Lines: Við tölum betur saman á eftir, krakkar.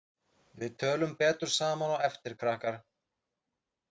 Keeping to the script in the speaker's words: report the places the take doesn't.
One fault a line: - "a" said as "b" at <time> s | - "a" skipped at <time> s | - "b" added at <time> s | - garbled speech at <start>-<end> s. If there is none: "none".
none